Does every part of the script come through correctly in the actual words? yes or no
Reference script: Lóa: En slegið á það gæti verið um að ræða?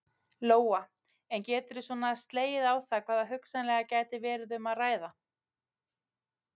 no